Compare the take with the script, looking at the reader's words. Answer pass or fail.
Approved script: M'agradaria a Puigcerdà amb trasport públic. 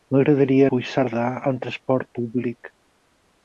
pass